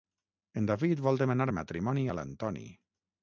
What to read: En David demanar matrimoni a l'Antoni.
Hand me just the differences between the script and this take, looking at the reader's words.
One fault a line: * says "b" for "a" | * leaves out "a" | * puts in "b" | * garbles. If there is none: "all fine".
* puts in "vol"